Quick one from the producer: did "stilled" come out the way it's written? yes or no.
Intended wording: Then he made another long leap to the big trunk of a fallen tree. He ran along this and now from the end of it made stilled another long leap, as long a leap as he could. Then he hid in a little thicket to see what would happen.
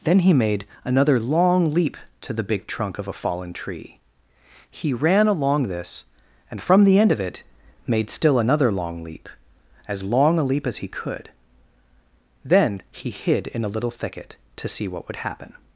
no